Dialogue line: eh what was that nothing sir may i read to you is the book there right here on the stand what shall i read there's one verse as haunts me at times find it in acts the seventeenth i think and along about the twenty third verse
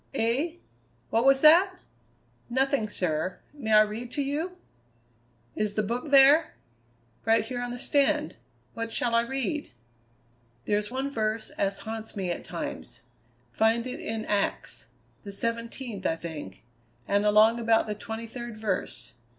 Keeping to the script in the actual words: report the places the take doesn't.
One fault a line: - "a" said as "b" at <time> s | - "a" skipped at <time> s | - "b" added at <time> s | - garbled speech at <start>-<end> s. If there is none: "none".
none